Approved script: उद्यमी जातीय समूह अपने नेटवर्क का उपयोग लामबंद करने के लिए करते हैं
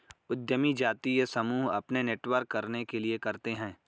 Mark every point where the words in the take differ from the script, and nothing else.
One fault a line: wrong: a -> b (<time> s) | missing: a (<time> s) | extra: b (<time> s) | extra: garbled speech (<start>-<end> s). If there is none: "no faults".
missing: का उपयोग लामबंद (2.5 s)